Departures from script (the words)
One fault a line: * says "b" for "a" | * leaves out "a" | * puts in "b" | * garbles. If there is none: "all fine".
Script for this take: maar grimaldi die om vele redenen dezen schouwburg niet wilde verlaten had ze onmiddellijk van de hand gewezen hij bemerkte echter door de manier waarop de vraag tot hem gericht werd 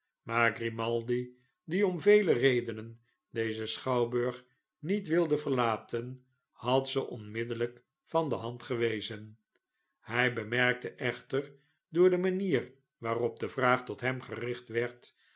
all fine